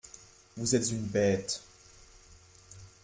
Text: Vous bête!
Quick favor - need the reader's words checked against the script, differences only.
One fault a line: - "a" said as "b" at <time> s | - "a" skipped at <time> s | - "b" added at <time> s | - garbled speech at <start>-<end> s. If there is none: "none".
- "êtes une" added at 0.7 s